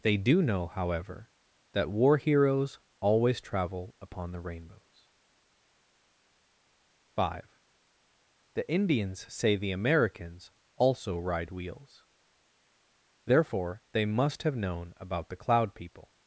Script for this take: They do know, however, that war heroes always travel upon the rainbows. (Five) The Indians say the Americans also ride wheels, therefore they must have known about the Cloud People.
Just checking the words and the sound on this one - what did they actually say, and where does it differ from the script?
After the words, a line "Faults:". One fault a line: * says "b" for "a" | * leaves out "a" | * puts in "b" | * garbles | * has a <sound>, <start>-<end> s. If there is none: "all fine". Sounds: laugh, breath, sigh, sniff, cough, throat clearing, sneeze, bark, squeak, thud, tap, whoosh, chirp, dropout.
They do know, however, that war heroes always travel upon the rainbows. (Five) The Indians say the Americans also ride wheels, therefore they must have known about the Cloud People.
Faults:
all fine